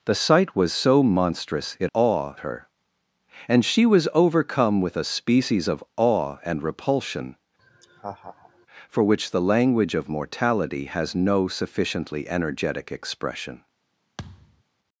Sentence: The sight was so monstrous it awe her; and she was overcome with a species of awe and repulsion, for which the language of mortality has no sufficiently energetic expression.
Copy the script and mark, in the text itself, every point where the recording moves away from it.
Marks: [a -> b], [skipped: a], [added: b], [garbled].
The sight was so monstrous it awe her; and she was overcome with a species of awe and repulsion, for which the language of mortality has no sufficiently energetic expression.